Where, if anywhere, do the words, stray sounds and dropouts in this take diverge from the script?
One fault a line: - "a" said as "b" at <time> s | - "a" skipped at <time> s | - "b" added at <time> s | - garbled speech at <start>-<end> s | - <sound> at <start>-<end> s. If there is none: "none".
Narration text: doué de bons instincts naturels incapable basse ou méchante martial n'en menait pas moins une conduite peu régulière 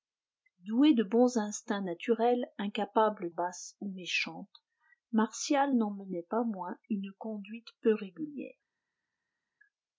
none